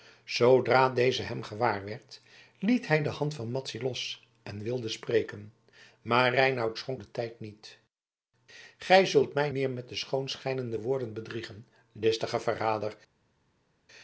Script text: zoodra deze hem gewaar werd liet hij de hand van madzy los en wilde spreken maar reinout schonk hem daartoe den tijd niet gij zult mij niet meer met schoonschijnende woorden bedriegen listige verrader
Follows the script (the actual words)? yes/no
no